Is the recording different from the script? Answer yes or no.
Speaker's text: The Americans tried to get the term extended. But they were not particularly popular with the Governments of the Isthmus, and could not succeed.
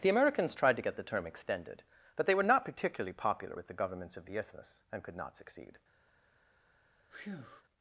no